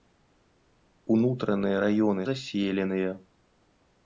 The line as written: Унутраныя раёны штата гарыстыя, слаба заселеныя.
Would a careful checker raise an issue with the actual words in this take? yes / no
yes